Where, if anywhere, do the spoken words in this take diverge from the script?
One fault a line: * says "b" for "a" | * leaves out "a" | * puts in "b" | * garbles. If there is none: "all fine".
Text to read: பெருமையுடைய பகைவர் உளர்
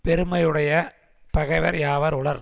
* puts in "யாவர்"